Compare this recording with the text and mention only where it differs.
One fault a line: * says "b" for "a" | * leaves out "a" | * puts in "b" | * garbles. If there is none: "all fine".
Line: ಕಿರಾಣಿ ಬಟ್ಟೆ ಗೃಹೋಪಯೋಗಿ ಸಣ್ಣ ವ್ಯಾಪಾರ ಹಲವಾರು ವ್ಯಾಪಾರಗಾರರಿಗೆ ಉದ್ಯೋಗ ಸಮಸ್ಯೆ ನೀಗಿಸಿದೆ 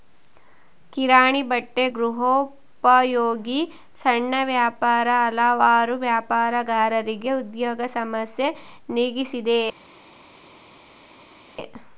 all fine